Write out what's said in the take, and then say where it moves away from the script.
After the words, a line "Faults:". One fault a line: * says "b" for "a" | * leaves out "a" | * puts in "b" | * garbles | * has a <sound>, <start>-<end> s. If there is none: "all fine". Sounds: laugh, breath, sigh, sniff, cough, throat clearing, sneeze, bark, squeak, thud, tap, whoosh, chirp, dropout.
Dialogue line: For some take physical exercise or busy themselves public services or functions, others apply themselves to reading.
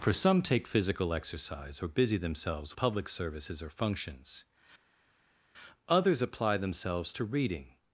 For some take physical exercise or busy themselves public services or functions, others apply themselves to reading.
Faults:
all fine